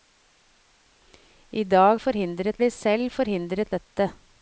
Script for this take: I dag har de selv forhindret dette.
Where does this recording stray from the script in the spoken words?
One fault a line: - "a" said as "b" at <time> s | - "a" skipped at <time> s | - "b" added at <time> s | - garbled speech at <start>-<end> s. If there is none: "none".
- "har" said as "forhindret" at 2.0 s